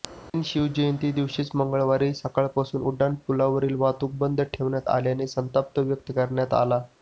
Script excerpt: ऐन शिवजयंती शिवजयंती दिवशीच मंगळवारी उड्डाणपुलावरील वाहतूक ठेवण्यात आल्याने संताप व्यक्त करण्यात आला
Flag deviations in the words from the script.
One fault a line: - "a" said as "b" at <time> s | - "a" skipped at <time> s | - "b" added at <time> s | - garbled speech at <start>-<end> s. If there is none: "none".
- "शिवजयंती" skipped at 1.1 s
- "सकाळपासून" added at 2.1 s
- "बंद" added at 4.2 s